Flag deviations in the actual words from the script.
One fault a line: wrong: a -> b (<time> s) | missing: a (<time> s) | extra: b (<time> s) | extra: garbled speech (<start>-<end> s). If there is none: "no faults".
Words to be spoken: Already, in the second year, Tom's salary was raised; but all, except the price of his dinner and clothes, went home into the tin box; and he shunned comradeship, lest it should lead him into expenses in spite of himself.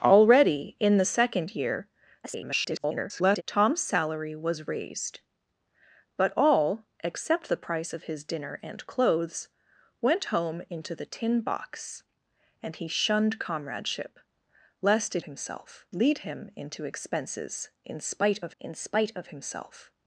extra: garbled speech (2.2-3.4 s)
wrong: should -> himself (15.2 s)
extra: in spite of (18.6 s)